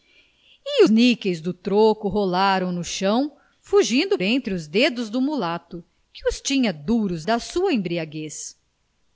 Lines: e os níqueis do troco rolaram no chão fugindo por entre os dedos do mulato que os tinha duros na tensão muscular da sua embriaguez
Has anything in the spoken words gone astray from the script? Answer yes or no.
yes